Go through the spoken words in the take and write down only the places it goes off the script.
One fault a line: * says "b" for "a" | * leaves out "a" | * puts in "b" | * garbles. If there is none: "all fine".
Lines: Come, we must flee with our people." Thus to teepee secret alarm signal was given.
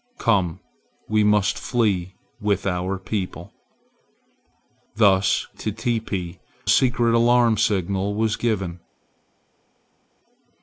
all fine